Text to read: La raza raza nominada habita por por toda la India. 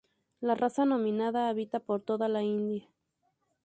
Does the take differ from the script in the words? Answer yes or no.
yes